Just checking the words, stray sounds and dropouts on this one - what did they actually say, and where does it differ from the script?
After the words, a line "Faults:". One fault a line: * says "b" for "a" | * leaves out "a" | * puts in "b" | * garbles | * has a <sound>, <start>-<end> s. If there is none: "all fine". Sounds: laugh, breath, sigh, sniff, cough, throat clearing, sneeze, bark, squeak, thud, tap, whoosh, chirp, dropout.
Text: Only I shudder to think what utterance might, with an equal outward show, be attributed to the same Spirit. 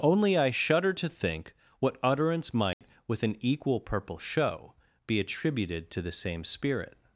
Only I shudder to think what utterance might, with an equal purple show, be attributed to the same Spirit.
Faults:
* has a dropout, 2.7-2.8 s
* says "purple" for "outward"